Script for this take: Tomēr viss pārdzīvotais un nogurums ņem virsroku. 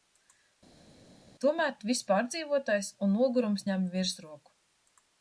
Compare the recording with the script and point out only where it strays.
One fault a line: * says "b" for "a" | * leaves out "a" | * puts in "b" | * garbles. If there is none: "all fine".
all fine